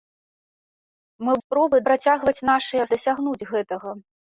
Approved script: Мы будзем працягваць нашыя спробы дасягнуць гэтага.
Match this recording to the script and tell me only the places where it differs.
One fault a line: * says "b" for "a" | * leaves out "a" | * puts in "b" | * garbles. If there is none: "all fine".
* says "спробы" for "будзем"
* leaves out "спробы"